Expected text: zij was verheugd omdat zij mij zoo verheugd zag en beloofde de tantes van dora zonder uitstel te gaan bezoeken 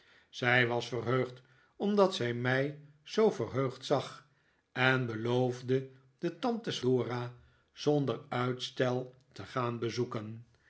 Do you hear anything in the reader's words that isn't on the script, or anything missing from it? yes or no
yes